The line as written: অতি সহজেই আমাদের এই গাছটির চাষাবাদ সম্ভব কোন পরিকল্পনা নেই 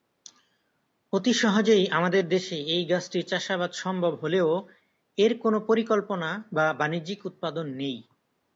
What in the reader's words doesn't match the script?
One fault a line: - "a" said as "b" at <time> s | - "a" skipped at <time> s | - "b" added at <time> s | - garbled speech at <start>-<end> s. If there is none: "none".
- "দেশে" added at 2.3 s
- "হলেও এর" added at 4.2 s
- "বা বাণিজ্যিক উৎপাদন" added at 6.5 s